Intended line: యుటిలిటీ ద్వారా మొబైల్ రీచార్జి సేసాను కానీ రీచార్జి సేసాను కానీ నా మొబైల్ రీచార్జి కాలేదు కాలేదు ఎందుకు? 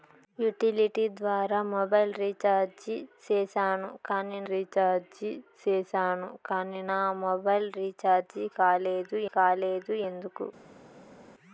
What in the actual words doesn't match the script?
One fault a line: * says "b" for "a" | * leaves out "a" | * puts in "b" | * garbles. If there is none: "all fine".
all fine